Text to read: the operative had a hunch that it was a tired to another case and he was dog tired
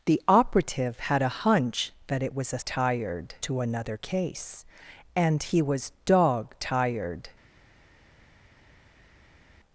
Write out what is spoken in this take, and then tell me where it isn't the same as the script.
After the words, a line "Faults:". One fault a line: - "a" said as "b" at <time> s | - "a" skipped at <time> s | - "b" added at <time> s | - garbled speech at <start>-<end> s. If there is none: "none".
the operative had a hunch that it was a tired to another case and he was dog tired
Faults:
none